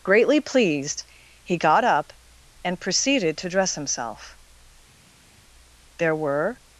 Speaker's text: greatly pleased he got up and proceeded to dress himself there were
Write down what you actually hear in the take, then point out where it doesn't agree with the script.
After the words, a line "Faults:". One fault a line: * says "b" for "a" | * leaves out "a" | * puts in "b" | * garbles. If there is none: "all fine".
greatly pleased he got up and proceeded to dress himself there were
Faults:
all fine